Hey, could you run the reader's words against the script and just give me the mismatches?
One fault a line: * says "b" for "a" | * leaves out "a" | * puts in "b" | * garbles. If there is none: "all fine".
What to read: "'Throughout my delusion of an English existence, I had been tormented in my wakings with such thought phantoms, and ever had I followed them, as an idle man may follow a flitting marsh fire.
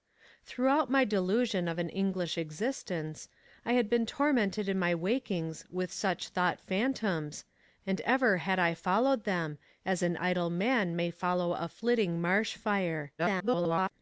* garbles